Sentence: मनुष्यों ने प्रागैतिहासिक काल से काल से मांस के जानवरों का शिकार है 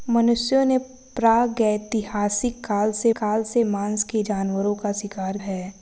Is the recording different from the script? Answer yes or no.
no